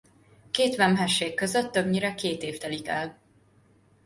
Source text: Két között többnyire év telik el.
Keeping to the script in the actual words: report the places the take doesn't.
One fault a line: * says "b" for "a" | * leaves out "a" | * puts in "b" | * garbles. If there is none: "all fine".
* puts in "vemhesség"
* puts in "két"